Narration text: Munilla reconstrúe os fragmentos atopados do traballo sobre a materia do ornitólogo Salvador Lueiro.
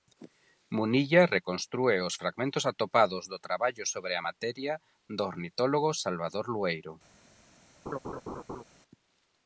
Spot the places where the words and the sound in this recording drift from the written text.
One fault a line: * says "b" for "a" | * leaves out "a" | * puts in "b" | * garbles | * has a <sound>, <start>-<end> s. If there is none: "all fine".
* has a laugh, 7.9-8.6 s